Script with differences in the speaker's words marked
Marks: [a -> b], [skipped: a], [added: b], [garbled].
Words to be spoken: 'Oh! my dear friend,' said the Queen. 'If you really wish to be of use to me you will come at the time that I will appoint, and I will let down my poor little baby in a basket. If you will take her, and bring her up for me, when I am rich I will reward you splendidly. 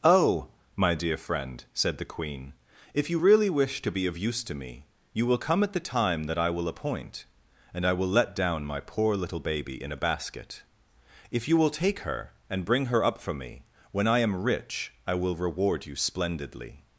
'Oh! my dear friend,' said the Queen. 'If you really wish to be of use to me you will come at the time that I will appoint, and I will let down my poor little baby in a basket. If you will take her, and bring her up for me, when I am rich I will reward you splendidly.